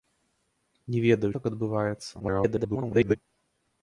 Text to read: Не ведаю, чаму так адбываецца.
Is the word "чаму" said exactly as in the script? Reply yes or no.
no